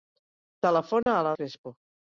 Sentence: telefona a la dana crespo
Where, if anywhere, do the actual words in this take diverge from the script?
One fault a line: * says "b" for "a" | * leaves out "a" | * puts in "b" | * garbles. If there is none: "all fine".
* leaves out "dana"